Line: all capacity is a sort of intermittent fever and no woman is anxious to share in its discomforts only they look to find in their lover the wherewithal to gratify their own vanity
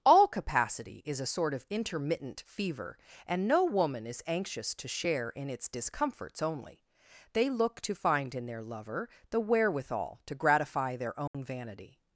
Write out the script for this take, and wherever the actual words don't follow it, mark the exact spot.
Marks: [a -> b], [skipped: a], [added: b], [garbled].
all capacity is a sort of intermittent fever and no woman is anxious to share in its discomforts only they look to find in their lover the wherewithal to gratify their own vanity